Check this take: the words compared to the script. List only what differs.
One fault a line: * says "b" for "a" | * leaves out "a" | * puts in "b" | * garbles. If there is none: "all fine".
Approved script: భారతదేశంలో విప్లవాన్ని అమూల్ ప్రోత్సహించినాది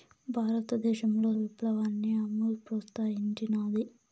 all fine